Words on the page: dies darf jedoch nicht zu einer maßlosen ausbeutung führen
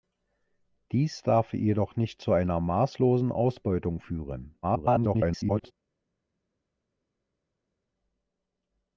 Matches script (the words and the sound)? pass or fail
fail